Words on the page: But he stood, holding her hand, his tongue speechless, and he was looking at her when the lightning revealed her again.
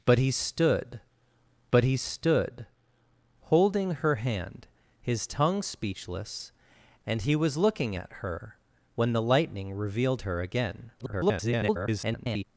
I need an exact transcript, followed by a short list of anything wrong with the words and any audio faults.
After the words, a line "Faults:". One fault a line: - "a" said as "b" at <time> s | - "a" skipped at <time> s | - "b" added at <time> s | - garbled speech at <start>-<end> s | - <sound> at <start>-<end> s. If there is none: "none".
But he stood but he stood, holding her hand, his tongue speechless, and he was looking at her when the lightning revealed her again. [garbled]
Faults:
- "but he stood" added at 1.7 s
- garbled speech at 11.0-12.4 s